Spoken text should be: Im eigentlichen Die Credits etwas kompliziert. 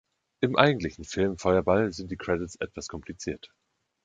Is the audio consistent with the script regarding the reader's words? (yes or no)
no